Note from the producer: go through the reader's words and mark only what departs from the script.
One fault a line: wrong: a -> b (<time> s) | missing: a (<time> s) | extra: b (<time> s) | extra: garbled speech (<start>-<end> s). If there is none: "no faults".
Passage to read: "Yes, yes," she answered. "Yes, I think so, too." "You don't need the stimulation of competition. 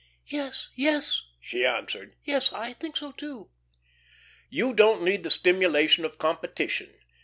no faults